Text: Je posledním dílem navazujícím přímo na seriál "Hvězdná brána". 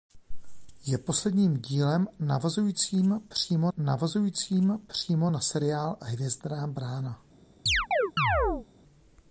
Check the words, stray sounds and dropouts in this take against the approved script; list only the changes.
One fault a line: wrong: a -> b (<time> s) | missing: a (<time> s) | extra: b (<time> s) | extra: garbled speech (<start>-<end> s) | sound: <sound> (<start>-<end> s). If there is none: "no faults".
extra: navazujícím přímo (3.8 s)
sound: chirp (7.7-8.7 s)